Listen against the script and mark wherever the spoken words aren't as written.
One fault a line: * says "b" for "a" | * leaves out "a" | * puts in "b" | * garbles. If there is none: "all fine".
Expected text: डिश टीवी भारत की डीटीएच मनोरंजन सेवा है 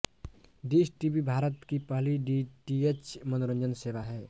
* puts in "पहली"